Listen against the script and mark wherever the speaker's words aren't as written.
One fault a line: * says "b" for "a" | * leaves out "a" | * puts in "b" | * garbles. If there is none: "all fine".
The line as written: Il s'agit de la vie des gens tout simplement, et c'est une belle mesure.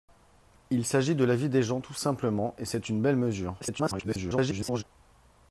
* garbles